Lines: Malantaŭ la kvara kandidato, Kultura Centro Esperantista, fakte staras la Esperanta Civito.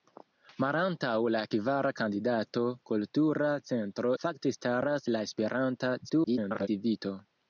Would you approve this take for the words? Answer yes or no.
no